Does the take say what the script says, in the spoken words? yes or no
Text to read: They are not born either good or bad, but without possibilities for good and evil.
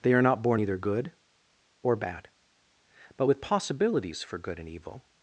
no